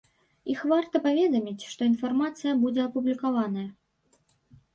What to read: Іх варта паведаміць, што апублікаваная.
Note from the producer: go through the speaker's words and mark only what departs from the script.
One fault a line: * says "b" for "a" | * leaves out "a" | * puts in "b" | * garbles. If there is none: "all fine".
* puts in "інфармацыя будзе"